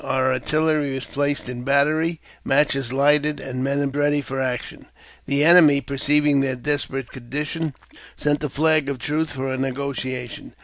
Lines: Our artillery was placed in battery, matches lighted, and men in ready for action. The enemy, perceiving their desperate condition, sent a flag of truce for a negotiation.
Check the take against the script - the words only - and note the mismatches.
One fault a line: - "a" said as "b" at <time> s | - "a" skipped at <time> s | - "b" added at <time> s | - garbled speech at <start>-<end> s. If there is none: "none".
none